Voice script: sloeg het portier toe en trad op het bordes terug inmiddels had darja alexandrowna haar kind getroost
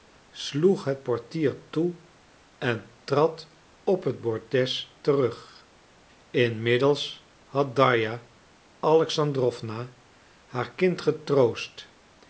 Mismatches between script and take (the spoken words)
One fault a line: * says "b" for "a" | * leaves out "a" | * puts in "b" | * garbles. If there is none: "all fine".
all fine